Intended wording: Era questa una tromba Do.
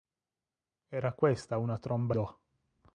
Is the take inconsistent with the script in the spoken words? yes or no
no